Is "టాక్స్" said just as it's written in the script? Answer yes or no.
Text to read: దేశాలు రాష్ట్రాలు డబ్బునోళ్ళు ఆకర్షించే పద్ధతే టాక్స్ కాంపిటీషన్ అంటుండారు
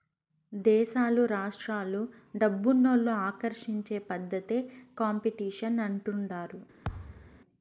no